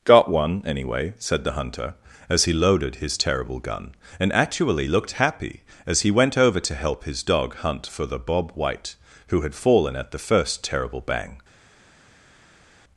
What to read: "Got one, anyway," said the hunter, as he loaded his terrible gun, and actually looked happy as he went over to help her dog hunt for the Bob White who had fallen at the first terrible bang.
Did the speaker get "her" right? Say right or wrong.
wrong